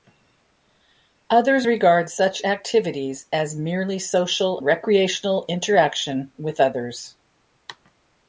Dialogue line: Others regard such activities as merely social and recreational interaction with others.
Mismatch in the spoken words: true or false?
true